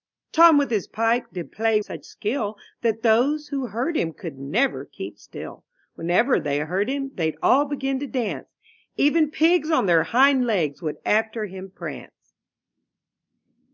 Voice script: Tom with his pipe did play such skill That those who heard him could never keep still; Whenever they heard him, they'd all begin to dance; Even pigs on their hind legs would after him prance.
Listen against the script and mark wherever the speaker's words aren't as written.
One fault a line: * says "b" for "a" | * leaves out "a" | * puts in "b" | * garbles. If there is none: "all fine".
all fine